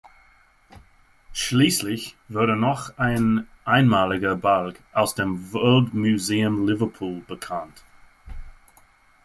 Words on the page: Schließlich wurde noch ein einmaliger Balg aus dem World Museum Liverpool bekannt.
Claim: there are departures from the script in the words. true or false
false